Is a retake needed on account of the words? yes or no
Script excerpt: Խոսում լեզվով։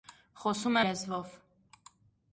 no